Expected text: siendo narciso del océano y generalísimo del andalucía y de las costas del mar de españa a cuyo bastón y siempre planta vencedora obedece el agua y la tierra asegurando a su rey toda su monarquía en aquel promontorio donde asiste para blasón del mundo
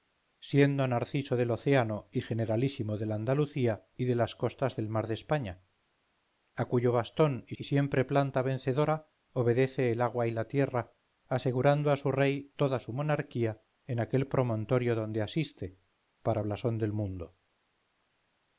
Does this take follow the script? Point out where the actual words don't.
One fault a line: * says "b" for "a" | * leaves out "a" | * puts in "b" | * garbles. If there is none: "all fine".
* puts in "y"